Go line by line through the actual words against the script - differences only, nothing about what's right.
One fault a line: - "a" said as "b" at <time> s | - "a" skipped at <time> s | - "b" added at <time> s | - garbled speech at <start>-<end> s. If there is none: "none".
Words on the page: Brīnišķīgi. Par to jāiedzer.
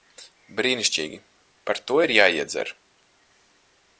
- "ir" added at 2.0 s